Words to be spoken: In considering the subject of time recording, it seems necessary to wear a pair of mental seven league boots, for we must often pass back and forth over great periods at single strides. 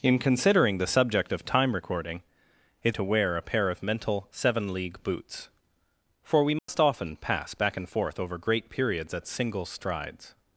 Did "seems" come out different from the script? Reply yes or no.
yes